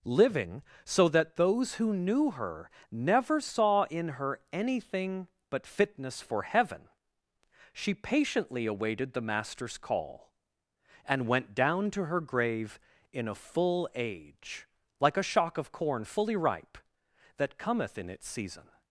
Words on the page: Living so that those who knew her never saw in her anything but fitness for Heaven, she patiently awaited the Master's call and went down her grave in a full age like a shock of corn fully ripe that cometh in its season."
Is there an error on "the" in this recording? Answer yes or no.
no